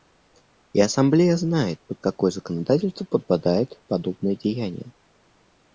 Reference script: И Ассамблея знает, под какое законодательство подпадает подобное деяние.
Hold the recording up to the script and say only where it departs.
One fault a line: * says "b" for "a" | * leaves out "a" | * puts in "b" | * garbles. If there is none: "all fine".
all fine